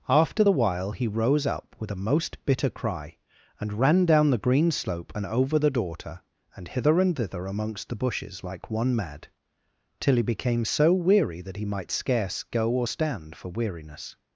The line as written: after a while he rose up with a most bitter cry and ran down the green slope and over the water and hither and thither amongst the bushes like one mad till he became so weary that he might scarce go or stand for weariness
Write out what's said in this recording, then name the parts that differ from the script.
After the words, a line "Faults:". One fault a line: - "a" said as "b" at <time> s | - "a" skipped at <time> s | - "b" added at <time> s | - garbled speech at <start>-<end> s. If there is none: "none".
after the while he rose up with a most bitter cry and ran down the green slope and over the daughter and hither and thither amongst the bushes like one mad till he became so weary that he might scarce go or stand for weariness
Faults:
- "a" said as "the" at 0.4 s
- "water" said as "daughter" at 5.7 s